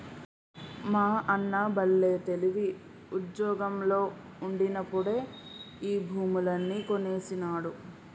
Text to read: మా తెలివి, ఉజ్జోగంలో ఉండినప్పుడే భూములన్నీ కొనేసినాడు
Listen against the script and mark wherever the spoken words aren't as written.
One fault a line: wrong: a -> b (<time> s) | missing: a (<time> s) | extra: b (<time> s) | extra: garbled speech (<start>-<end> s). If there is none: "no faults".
extra: అన్న బల్లే (1.3 s)
extra: ఈ (5.8 s)